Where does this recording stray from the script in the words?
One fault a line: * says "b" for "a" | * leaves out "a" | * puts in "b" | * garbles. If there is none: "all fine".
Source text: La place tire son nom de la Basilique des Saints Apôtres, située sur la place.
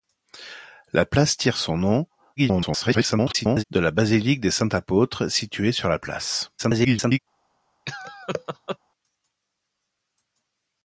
* garbles
* garbles